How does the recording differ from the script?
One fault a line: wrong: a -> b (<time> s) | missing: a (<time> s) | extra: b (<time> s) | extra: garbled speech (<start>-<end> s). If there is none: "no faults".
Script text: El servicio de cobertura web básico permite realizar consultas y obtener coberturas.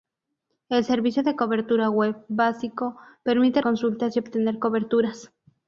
missing: realizar (3.6 s)